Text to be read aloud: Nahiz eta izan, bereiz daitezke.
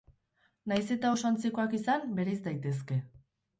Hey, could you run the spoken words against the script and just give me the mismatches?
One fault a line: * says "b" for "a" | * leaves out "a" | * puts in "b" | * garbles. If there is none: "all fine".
* puts in "oso antzekoak"